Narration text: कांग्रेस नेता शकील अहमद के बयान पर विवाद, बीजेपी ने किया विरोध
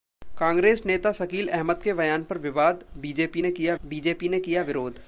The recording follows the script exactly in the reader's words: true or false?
false